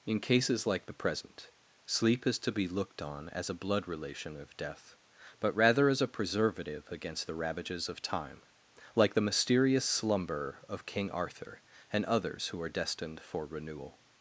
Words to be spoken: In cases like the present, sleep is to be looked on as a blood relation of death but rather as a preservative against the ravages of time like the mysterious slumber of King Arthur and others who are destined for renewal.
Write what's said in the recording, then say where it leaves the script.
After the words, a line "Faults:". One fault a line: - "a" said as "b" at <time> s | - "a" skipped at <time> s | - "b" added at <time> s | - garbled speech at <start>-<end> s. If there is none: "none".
In cases like the present, sleep is to be looked on as a blood relation of death but rather as a preservative against the ravages of time like the mysterious slumber of King Arthur and others who are destined for renewal.
Faults:
none